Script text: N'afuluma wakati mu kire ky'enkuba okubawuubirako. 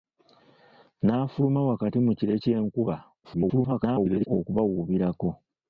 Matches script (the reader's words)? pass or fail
fail